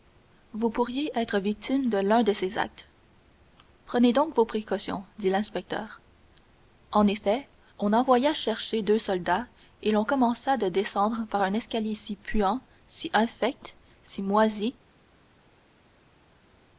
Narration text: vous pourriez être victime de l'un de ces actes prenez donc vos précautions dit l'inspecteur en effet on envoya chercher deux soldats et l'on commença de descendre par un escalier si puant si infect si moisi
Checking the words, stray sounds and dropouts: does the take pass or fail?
pass